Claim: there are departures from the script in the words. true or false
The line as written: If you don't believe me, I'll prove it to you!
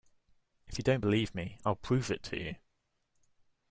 false